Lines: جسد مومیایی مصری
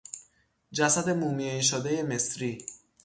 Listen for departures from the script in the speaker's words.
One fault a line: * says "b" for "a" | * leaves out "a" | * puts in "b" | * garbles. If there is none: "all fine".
* puts in "شدهی"